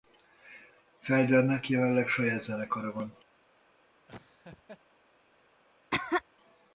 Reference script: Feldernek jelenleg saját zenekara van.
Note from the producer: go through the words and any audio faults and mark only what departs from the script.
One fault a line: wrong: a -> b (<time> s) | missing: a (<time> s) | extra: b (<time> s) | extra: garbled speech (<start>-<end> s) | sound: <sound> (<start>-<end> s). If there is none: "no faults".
sound: laugh (4.1-4.8 s)
sound: cough (5.9-6.2 s)